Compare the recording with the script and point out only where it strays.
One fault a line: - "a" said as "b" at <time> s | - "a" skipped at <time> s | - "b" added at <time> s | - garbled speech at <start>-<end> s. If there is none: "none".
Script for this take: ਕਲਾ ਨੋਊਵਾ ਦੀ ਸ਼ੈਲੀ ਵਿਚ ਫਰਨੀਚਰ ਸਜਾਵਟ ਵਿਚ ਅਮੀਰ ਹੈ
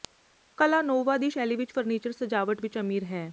none